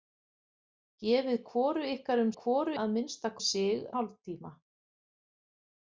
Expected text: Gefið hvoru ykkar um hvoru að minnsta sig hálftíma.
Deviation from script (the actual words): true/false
false